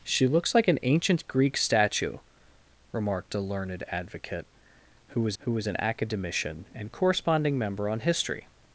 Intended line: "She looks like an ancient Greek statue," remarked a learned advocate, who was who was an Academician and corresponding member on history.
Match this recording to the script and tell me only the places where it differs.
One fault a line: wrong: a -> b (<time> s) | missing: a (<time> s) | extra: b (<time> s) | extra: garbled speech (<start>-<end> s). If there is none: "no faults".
no faults